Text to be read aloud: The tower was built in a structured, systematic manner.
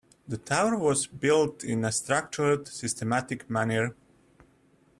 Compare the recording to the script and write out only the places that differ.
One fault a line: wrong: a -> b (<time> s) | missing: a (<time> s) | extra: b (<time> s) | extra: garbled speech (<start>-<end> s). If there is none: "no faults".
no faults